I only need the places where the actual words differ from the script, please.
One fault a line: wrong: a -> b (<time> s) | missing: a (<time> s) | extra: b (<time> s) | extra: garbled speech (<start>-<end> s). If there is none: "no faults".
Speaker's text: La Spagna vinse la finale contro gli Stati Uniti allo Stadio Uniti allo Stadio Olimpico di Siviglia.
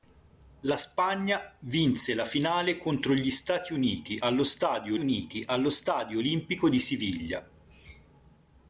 no faults